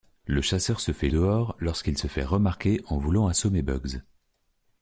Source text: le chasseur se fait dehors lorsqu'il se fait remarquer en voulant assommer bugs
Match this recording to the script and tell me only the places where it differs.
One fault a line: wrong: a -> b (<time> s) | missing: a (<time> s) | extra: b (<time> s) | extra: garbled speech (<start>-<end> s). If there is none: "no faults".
no faults